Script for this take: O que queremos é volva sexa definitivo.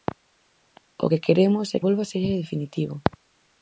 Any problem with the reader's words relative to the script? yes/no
no